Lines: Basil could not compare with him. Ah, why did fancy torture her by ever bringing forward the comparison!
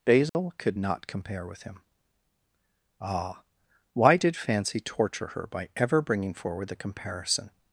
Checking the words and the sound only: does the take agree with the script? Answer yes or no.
no